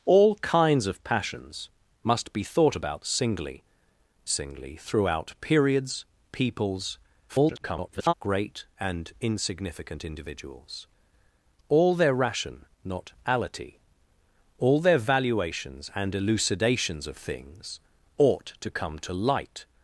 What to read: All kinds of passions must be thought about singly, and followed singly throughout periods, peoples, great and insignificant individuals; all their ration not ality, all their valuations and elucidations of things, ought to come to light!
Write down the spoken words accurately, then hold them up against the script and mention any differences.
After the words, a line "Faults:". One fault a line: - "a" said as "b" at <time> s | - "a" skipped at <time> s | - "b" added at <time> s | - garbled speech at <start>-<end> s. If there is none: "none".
All kinds of passions must be thought about singly, singly throughout periods, peoples, [garbled] great and insignificant individuals; all their ration not ality, all their valuations and elucidations of things, ought to come to light!
Faults:
- "and followed" skipped at 3.6 s
- garbled speech at 7.3-8.1 s